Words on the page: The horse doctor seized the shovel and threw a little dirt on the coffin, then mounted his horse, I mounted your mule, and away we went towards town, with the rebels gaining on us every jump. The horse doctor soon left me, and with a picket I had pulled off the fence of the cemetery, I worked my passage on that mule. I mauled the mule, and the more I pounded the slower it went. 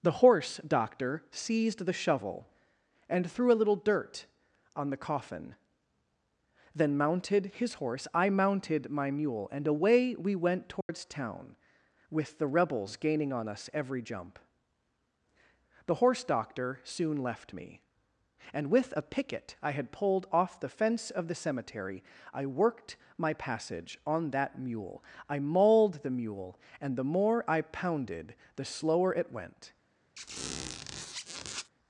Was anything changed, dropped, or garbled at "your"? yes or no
yes